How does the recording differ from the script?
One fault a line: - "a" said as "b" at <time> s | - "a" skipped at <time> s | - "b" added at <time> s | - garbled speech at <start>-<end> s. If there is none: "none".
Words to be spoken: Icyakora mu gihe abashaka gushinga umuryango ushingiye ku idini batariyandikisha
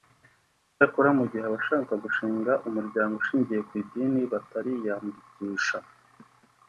none